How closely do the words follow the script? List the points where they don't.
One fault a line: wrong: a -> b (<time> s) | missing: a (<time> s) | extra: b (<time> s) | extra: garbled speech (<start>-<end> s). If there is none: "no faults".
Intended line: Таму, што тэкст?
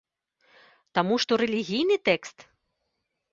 extra: рэлігійны (1.4 s)